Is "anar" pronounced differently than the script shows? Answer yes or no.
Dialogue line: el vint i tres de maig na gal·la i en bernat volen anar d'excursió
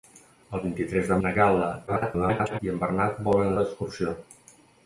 yes